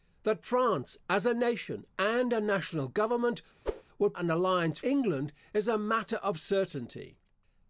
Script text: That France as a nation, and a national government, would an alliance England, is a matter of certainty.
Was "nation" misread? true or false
false